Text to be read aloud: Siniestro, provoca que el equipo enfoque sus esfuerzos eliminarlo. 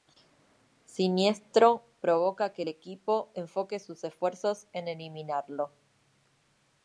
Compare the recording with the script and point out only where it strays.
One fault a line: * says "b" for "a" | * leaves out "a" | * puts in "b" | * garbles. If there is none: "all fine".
* puts in "en"